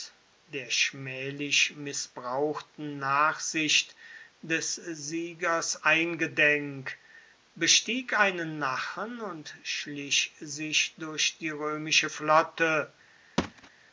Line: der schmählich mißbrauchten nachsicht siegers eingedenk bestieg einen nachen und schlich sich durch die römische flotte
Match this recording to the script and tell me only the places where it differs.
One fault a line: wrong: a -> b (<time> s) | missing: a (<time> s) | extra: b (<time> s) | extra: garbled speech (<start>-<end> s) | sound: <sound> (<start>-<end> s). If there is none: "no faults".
extra: des (4.4 s)
sound: thud (13.4-13.7 s)